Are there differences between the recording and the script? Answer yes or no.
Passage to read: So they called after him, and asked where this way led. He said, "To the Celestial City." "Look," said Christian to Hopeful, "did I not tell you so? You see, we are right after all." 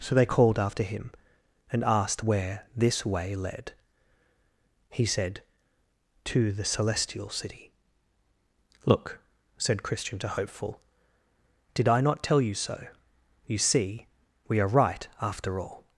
no